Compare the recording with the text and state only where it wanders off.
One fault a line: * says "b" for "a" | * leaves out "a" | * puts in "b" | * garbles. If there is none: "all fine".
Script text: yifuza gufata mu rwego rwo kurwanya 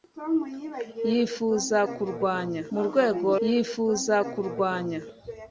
* says "kurwanya" for "gufata"
* says "yifuza" for "rwo"